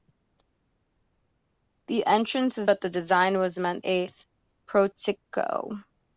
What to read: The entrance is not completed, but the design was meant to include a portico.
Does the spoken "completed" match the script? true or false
false